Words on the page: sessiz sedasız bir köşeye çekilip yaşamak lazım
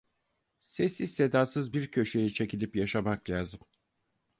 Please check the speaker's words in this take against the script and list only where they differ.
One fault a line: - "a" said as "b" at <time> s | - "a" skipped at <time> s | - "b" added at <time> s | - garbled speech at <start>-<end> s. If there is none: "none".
none